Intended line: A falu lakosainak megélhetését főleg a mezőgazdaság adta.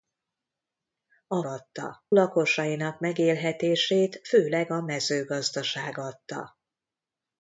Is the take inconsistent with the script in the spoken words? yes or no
yes